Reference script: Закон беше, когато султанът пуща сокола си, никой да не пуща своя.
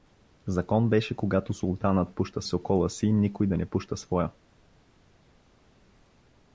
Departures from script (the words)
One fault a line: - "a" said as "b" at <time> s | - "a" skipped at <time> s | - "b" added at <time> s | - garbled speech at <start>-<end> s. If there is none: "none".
none